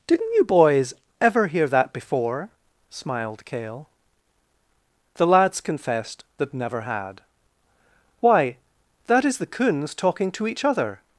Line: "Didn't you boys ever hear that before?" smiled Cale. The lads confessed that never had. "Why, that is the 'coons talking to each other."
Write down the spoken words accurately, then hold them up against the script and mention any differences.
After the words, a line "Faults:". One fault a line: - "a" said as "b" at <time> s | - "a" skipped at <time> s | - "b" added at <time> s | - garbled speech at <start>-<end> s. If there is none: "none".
"Didn't you boys ever hear that before?" smiled Cale. The lads confessed that never had. "Why, that is the 'coons talking to each other."
Faults:
none